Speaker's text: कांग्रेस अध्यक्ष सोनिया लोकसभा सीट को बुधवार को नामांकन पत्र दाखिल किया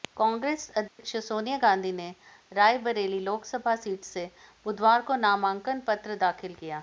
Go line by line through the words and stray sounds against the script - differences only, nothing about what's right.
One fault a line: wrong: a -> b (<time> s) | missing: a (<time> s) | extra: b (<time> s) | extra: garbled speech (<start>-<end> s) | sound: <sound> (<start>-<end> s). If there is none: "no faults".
sound: dropout (0.9-1.0 s)
extra: गांधी ने रायबरेली (1.6 s)
wrong: को -> से (4.0 s)